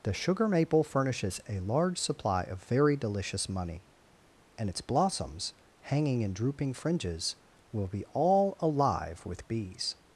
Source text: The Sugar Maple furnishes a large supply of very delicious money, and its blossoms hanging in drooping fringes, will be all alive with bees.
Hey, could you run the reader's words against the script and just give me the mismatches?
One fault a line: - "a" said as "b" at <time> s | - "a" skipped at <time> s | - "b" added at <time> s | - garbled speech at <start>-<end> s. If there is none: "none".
none